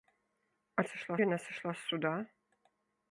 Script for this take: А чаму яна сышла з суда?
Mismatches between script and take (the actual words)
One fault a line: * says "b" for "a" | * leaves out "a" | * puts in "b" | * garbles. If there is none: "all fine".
* says "сышла" for "чаму"